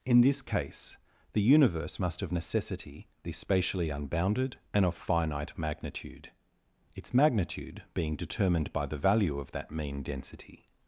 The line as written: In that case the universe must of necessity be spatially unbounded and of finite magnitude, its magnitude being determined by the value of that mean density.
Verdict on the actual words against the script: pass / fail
fail